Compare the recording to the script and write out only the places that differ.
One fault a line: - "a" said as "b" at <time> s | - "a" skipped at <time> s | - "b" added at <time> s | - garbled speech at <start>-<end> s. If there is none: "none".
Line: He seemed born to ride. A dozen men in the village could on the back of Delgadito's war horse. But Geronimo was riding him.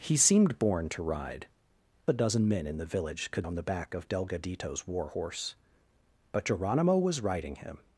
none